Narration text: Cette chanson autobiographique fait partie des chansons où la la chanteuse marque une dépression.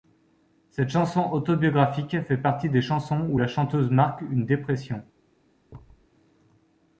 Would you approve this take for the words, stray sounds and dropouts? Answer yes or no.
no